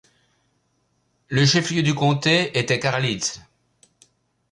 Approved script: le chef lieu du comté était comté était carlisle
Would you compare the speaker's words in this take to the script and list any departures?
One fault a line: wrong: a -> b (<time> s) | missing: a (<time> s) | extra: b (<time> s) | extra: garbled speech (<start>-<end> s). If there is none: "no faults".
missing: comté était (2.8 s)